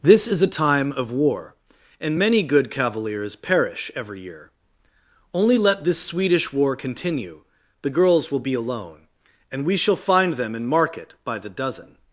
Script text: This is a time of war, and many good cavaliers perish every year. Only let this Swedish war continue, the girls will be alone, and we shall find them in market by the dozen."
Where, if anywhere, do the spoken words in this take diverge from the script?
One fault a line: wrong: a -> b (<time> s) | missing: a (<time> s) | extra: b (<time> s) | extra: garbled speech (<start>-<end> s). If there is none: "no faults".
no faults